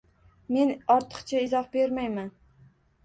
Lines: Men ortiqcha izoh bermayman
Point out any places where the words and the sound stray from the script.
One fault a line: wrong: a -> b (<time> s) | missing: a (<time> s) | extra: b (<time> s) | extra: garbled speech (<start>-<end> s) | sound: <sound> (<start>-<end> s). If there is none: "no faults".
no faults